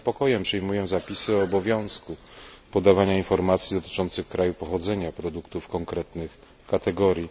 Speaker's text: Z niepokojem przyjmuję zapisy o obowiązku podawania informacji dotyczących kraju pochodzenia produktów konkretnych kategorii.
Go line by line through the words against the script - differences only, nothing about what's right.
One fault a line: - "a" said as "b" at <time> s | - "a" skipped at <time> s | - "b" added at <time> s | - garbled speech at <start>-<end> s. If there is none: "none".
none